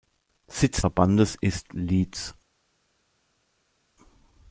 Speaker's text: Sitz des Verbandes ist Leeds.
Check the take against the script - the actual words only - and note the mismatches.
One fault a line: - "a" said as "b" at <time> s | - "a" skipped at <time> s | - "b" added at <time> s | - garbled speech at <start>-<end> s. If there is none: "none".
- "des" skipped at 0.8 s